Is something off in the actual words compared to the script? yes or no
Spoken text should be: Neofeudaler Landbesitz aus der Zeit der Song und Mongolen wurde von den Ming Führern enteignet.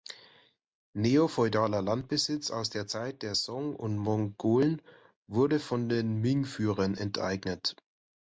no